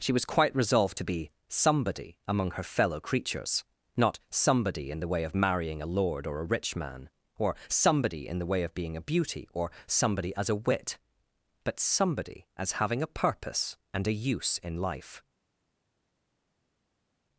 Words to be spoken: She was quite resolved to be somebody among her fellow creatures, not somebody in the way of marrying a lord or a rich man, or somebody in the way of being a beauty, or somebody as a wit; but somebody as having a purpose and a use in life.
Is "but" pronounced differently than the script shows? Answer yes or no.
no